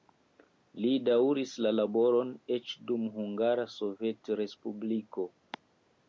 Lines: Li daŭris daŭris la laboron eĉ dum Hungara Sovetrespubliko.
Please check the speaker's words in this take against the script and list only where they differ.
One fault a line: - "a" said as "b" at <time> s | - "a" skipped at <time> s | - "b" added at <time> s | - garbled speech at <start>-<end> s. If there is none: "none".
- "daŭris" skipped at 1.5 s